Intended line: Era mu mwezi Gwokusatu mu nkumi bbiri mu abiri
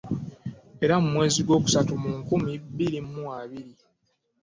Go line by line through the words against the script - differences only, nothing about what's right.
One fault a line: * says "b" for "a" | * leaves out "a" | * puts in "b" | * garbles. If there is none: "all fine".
all fine